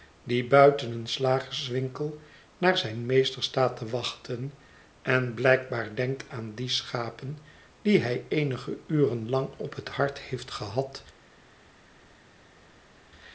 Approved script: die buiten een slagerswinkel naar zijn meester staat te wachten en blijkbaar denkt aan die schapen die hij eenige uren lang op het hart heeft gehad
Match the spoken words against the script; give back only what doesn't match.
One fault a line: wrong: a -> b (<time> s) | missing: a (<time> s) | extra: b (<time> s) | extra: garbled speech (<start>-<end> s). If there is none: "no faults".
no faults